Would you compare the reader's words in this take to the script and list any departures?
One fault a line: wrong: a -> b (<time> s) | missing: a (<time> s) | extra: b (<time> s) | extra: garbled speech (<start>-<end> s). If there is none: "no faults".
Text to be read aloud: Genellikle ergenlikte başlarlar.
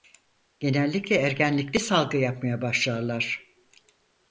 extra: salgı yapmaya (1.8 s)